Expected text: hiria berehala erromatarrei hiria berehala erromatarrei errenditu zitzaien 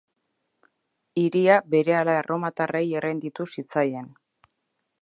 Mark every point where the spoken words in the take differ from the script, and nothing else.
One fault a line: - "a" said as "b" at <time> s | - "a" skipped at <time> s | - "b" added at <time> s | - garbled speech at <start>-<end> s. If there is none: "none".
- "hiria berehala erromatarrei" skipped at 2.9 s